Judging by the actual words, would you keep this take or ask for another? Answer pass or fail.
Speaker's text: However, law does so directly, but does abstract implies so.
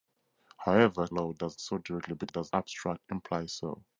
pass